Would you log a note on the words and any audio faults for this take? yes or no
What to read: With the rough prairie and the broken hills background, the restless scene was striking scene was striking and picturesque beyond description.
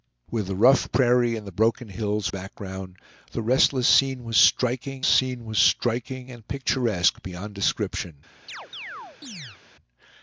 yes